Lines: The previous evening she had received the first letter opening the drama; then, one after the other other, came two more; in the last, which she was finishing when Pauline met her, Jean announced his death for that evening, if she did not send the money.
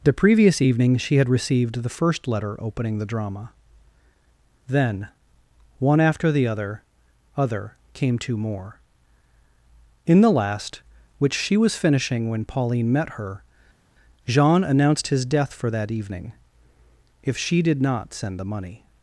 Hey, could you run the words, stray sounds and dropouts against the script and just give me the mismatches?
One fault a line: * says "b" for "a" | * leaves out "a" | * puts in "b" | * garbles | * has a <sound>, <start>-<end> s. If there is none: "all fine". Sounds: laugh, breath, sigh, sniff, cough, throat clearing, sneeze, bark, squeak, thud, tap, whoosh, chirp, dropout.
all fine